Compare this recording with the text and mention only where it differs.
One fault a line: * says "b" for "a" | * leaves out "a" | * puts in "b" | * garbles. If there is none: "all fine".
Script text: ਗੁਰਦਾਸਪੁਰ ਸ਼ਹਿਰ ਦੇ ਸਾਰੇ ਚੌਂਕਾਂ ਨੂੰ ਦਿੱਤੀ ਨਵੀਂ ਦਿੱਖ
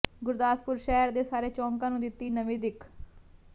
all fine